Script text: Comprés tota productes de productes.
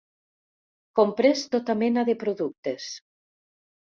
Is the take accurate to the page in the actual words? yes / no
no